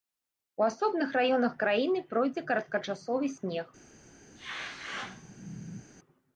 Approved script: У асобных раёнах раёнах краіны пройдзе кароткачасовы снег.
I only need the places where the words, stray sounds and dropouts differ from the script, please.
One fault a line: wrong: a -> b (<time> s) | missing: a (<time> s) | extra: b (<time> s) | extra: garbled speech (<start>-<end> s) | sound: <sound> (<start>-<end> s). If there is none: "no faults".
missing: раёнах (1.5 s)
sound: sneeze (4.4-5.9 s)